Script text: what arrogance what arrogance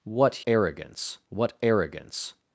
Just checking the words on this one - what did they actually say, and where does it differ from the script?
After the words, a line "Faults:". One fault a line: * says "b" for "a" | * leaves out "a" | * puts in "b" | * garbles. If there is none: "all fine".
what arrogance what arrogance
Faults:
all fine